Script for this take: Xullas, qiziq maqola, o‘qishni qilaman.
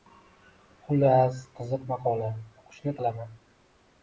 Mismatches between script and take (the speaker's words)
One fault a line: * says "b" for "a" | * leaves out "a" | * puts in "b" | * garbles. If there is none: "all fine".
all fine